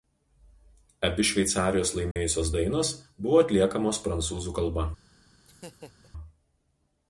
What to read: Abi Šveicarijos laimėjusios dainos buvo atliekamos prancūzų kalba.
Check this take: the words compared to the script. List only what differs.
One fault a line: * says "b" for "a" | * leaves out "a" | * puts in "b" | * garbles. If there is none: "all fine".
all fine